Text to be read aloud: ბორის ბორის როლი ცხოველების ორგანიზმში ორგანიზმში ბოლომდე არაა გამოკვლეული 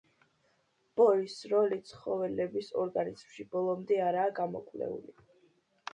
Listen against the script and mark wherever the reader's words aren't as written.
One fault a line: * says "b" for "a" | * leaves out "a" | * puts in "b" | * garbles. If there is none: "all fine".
* leaves out "ბორის"
* leaves out "ორგანიზმში"